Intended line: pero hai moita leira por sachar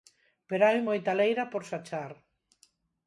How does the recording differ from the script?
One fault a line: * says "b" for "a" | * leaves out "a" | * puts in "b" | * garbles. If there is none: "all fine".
all fine